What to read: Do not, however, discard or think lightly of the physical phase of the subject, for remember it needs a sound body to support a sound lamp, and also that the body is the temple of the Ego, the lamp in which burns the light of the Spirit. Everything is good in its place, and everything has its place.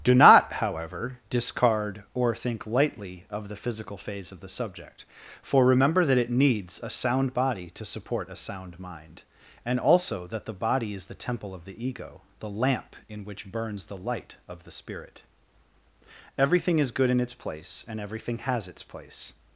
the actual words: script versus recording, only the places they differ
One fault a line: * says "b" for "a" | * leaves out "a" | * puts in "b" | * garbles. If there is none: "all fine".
* puts in "that"
* says "mind" for "lamp"